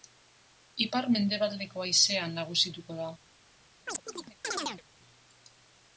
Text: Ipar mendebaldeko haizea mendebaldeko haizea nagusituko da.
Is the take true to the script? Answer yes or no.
no